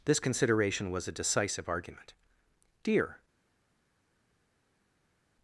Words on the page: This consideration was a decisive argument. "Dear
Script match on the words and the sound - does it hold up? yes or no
yes